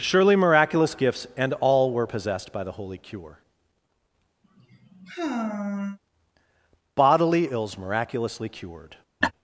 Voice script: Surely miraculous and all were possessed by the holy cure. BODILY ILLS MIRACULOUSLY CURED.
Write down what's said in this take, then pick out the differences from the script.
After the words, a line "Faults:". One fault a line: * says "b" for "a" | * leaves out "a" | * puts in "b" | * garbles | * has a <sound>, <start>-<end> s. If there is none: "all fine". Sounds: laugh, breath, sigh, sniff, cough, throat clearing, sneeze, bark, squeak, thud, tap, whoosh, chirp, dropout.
Surely miraculous gifts and all were possessed by the holy cure. BODILY ILLS MIRACULOUSLY CURED.
Faults:
* puts in "gifts"
* has a sigh, 4.4-6.0 s
* has a laugh, 9.2-9.3 s